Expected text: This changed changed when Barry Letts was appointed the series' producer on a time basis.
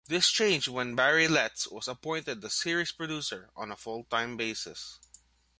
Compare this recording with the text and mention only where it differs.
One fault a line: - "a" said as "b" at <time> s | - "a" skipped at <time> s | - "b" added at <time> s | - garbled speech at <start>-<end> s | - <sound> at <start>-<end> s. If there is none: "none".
- "changed" skipped at 0.7 s
- "full" added at 3.8 s